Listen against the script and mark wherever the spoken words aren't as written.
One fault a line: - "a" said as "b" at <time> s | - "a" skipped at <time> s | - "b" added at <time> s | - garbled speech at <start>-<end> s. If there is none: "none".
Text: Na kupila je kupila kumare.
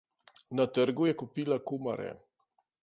- "kupila" said as "trgu" at 0.8 s